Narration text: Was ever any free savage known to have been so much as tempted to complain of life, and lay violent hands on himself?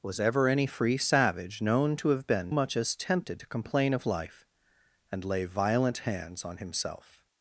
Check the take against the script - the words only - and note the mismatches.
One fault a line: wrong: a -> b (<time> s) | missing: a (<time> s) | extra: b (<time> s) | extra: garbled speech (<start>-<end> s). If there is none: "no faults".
missing: so (2.5 s)